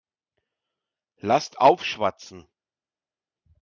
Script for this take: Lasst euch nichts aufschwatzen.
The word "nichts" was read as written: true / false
false